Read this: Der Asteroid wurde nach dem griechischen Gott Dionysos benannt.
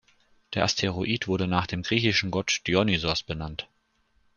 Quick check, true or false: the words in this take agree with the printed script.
true